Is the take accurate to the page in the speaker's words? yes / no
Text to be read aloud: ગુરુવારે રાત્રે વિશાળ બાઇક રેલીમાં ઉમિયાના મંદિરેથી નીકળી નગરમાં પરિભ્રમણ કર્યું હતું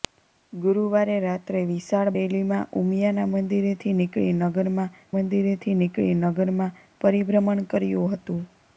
no